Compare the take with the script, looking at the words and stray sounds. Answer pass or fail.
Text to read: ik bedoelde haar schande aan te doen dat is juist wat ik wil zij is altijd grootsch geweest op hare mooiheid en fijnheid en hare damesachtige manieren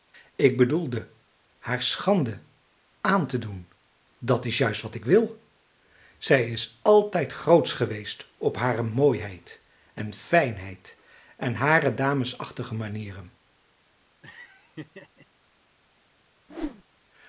fail